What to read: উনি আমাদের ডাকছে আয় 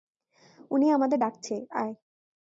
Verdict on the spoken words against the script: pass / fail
pass